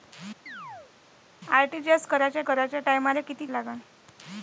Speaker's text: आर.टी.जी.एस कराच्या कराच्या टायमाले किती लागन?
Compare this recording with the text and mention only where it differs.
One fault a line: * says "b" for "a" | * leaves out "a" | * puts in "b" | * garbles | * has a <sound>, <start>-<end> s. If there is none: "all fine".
* has a chirp, 0.5-0.9 s